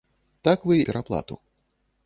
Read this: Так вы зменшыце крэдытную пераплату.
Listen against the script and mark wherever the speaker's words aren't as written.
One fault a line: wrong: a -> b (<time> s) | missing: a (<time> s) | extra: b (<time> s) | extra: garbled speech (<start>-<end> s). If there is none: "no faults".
missing: зменшыце крэдытную (0.8 s)